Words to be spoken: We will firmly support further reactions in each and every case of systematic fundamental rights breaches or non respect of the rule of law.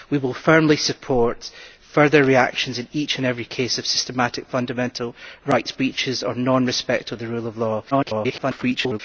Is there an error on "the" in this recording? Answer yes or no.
no